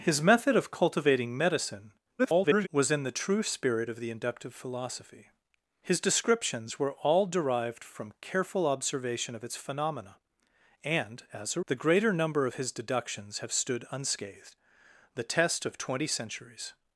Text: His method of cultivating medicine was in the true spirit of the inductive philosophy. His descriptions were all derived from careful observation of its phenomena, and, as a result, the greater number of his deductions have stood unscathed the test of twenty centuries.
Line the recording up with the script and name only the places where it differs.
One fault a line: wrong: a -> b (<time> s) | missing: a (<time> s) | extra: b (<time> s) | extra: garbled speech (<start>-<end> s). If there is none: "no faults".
extra: garbled speech (2.2-2.7 s)
missing: result (11.6 s)